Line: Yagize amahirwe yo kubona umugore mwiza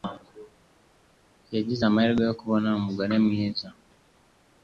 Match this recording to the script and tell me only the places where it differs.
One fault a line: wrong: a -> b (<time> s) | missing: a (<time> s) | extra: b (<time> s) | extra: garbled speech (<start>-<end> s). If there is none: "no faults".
no faults